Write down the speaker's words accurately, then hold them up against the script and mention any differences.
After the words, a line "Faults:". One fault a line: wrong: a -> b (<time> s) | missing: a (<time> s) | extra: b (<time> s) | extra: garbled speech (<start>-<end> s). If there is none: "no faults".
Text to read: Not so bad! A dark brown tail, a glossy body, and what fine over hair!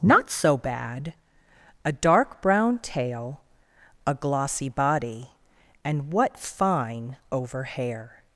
Not so bad! A dark brown tail, a glossy body, and what fine over hair!
Faults:
no faults